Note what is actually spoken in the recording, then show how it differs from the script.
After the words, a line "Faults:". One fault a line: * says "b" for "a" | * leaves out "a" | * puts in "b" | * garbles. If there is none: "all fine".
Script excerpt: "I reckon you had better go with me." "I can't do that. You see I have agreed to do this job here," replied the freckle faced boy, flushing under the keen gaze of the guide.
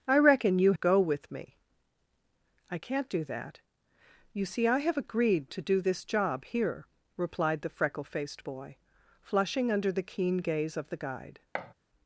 "I reckon you go with me." "I can't do that. You see I have agreed to do this job here," replied the freckle faced boy, flushing under the keen gaze of the guide.
Faults:
* leaves out "had better"